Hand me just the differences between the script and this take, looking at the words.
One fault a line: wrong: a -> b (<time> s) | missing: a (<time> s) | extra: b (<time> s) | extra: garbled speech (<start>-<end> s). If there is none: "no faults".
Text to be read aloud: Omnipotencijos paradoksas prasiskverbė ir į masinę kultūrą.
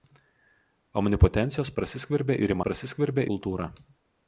missing: paradoksas (1.7 s)
wrong: masinę -> prasiskverbė (2.7 s)